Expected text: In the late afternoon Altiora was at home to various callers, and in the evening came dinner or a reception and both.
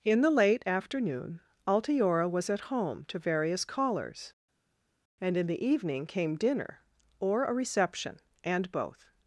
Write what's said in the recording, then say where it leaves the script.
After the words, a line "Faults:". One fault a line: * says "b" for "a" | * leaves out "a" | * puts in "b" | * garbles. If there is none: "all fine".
In the late afternoon Altiora was at home to various callers, and in the evening came dinner or a reception and both.
Faults:
all fine